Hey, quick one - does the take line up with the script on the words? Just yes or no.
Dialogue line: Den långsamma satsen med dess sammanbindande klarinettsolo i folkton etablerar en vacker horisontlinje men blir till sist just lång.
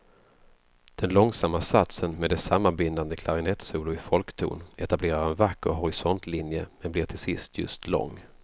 yes